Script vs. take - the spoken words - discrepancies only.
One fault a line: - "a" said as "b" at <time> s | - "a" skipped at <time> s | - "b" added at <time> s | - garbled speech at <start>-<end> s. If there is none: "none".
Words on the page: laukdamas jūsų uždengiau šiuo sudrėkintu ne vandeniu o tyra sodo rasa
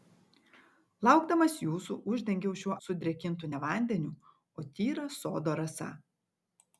none